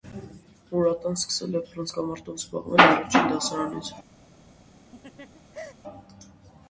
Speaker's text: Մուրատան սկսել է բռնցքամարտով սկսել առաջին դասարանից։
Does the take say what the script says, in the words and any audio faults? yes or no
no